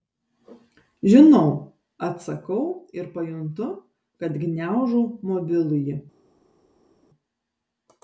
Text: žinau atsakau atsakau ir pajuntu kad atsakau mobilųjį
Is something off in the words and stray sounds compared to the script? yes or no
yes